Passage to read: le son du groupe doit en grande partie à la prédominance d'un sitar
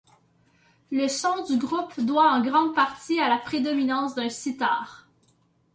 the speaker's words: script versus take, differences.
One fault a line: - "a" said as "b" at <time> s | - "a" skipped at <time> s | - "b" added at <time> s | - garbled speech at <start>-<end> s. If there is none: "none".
none